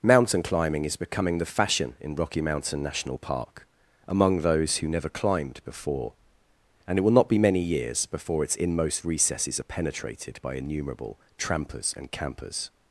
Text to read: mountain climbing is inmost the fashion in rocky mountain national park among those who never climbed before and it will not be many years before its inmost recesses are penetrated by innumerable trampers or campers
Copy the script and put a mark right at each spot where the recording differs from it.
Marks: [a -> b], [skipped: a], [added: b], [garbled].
mountain climbing is [inmost -> becoming] the fashion in rocky mountain national park among those who never climbed before and it will not be many years before its inmost recesses are penetrated by innumerable trampers [or -> and] campers